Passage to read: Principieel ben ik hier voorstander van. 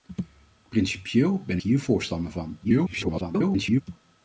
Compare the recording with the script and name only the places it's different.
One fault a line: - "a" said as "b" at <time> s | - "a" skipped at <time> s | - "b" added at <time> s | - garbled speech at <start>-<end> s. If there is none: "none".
- "ik" skipped at 1.6 s
- garbled speech at 2.6-3.8 s